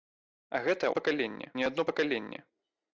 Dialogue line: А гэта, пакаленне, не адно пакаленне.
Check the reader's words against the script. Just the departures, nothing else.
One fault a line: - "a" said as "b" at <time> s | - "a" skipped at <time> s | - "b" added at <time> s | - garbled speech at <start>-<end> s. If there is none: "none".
none